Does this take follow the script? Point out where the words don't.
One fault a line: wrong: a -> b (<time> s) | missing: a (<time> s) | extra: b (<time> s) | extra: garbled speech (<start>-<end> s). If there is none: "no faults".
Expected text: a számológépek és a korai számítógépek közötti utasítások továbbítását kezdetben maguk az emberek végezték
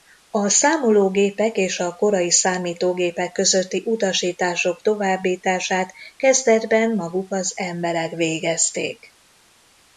no faults